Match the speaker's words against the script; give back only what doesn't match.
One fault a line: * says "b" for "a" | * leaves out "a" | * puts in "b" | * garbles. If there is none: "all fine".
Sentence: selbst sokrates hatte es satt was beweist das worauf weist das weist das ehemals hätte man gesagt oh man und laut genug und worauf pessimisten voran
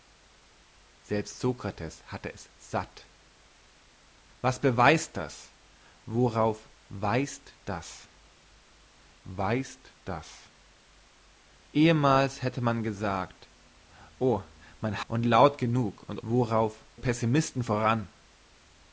all fine